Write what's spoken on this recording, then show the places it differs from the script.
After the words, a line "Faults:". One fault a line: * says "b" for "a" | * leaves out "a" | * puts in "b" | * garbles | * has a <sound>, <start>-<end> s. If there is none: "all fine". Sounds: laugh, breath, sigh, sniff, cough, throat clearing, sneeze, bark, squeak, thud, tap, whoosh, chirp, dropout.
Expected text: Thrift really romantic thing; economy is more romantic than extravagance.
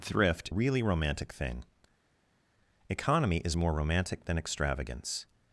Thrift really romantic thing; economy is more romantic than extravagance.
Faults:
all fine